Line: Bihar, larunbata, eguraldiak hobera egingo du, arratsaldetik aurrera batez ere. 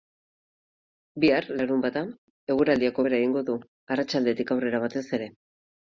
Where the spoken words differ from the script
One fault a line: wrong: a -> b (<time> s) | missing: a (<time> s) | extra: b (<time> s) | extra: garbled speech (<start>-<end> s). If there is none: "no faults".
no faults